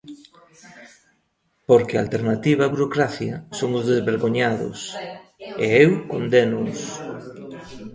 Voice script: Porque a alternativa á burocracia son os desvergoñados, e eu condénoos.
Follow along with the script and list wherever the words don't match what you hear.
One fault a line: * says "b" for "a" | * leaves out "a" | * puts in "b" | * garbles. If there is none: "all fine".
all fine